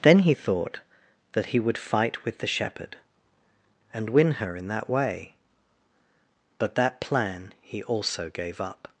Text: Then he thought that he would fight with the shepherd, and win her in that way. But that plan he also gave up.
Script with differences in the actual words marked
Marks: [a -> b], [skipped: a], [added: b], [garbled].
Then he thought that he would fight with the shepherd, and win her in that way. But that plan he also gave up.